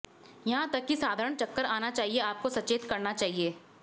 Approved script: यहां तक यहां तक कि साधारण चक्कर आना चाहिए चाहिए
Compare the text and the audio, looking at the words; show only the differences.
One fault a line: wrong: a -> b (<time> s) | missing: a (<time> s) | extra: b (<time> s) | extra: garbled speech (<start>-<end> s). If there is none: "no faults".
missing: यहां तक (0.8 s)
extra: आपको सचेत करना (2.2 s)